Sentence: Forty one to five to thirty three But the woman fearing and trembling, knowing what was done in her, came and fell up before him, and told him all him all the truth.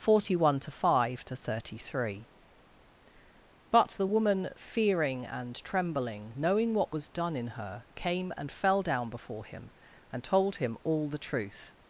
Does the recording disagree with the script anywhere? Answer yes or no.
yes